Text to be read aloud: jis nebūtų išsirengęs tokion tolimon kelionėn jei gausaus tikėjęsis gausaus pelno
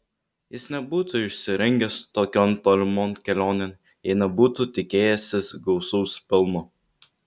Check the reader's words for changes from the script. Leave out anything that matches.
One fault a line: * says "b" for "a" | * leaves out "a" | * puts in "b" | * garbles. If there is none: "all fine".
* says "nebūtų" for "gausaus"